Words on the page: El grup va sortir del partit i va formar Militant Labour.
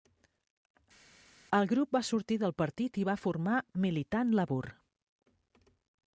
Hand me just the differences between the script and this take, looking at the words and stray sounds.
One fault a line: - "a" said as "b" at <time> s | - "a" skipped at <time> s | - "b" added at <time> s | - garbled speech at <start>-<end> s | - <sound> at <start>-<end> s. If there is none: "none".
none